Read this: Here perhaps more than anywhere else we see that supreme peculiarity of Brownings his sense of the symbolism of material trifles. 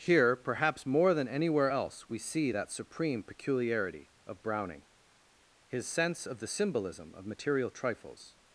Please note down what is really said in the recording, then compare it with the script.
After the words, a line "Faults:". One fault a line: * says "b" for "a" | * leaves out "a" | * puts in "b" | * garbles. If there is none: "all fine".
Here perhaps more than anywhere else we see that supreme peculiarity of Browning his sense of the symbolism of material trifles.
Faults:
* says "Browning" for "Brownings"